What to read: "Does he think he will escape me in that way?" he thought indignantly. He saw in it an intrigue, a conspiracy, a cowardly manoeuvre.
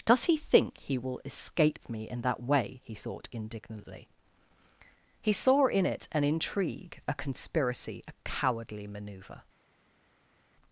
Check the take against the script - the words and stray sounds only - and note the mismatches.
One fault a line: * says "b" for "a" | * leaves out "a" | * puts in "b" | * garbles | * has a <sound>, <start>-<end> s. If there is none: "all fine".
all fine